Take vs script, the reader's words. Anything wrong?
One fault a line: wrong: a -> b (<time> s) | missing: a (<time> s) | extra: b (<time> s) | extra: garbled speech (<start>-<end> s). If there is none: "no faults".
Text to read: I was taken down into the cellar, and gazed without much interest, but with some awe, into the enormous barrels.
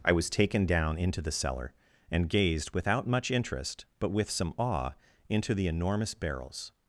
no faults